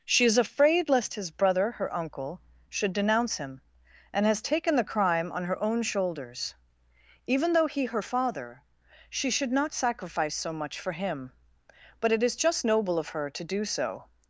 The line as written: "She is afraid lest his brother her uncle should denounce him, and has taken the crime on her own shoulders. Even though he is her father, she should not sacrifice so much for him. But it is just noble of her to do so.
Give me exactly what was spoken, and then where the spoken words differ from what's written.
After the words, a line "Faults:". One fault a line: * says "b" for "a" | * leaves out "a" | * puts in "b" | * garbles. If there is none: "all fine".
"She is afraid lest his brother her uncle should denounce him, and has taken the crime on her own shoulders. Even though he her father, she should not sacrifice so much for him. But it is just noble of her to do so.
Faults:
* leaves out "is"